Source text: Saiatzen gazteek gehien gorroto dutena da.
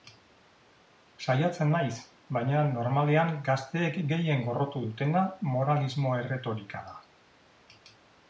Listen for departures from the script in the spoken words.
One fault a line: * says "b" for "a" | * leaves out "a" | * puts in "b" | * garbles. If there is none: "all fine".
* puts in "naiz baina normalean"
* puts in "moralismo erretorika"